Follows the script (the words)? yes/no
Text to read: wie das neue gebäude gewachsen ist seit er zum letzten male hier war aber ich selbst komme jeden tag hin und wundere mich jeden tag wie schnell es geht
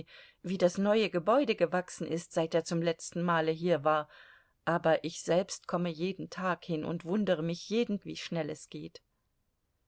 no